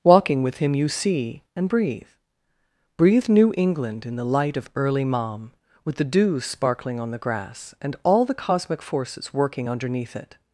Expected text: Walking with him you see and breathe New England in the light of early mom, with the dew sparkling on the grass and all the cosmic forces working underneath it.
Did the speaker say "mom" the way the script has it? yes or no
yes